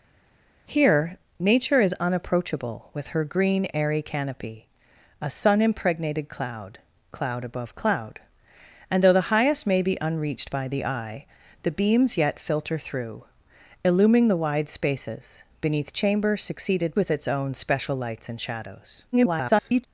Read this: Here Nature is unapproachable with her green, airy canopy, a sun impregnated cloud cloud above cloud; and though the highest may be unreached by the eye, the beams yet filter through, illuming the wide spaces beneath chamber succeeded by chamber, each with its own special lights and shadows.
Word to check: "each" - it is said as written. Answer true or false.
false